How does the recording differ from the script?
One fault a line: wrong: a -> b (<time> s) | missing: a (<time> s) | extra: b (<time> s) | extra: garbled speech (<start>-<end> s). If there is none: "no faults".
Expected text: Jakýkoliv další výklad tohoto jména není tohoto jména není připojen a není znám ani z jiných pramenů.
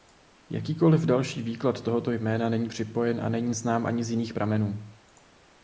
missing: tohoto jména není (2.7 s)